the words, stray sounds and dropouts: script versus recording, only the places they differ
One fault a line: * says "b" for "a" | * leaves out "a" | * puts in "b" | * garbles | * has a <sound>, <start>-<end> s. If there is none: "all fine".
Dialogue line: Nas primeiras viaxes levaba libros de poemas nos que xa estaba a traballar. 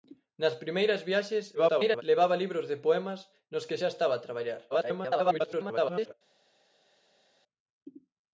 * garbles
* garbles